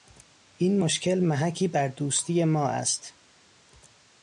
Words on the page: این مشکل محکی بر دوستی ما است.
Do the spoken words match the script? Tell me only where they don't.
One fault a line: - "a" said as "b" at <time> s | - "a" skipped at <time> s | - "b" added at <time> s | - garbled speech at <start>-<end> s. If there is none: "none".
none